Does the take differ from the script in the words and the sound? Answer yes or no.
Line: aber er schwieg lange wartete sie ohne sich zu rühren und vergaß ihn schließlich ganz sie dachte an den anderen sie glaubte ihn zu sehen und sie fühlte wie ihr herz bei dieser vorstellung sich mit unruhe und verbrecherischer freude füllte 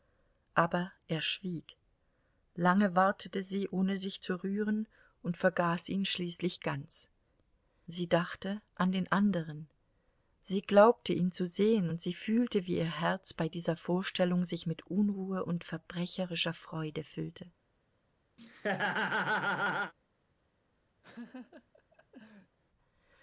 yes